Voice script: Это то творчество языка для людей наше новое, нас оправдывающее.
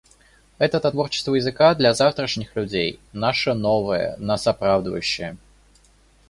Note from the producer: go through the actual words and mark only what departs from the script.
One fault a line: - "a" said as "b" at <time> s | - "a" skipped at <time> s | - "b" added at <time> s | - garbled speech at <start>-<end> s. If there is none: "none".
- "завтрашних" added at 1.9 s